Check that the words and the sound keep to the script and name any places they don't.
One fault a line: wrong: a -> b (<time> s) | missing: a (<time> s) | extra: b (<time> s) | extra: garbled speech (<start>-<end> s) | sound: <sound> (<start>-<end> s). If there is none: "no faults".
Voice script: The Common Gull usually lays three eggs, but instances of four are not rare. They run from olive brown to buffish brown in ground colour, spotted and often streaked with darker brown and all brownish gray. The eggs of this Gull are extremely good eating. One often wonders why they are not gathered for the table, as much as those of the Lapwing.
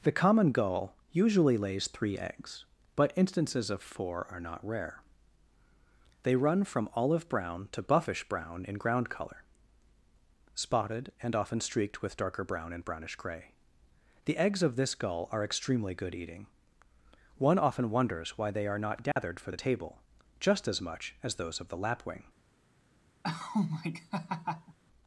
missing: all (12.8 s)
sound: dropout (19.1-19.2 s)
extra: just (20.4 s)
sound: laugh (23.2-24.8 s)